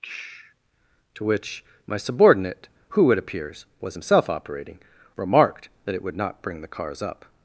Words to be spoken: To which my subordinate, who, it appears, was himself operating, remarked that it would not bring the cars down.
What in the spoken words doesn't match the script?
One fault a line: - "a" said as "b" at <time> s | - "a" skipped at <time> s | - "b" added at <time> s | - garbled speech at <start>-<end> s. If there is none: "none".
- "down" said as "up" at 7.0 s